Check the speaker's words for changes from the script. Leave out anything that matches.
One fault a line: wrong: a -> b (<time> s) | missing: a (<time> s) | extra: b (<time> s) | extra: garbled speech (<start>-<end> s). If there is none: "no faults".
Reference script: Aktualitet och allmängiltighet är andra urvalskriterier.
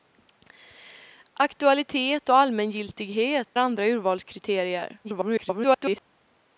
missing: är (3.6 s)
extra: garbled speech (5.0-6.0 s)